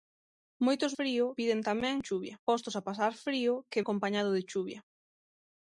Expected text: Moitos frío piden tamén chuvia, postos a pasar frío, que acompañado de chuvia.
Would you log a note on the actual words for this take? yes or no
no